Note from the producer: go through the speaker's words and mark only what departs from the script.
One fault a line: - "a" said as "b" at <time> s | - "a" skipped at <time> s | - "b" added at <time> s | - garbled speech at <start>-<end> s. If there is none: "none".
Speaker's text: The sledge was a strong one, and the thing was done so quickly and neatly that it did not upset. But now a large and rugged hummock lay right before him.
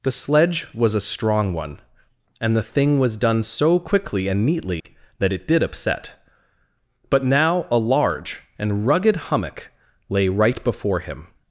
- "not" skipped at 5.6 s